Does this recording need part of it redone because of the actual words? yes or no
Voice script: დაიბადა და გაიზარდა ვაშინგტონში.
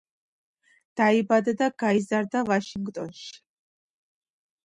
no